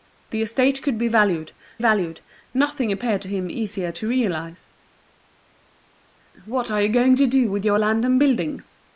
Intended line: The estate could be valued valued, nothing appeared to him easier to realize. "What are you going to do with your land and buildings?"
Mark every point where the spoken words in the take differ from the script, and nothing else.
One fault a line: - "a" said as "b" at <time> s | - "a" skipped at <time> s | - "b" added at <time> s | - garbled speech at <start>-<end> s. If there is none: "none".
none